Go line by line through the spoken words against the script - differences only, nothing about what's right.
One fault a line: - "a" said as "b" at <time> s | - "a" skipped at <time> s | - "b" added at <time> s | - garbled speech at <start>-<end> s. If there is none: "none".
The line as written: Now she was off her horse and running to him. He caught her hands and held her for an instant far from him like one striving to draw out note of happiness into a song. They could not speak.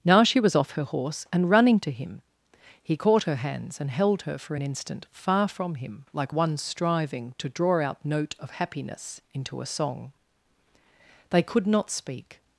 none